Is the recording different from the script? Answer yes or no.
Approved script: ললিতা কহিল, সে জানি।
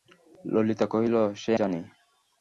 no